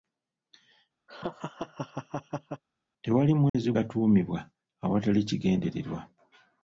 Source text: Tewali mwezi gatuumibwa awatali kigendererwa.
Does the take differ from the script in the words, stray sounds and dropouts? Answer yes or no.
yes